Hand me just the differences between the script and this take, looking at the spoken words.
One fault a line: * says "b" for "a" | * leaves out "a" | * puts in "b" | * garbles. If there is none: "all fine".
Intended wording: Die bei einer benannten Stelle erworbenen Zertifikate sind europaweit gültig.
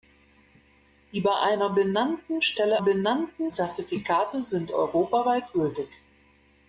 * says "benannten" for "erworbenen"